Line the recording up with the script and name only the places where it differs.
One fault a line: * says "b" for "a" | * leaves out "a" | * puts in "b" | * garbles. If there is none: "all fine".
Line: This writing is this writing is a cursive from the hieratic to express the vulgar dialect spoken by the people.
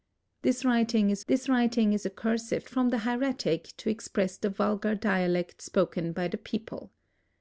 all fine